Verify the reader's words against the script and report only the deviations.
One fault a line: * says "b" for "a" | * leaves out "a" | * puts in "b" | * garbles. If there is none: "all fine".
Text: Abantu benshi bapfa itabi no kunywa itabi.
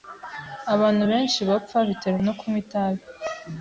* says "biterwa" for "itabi"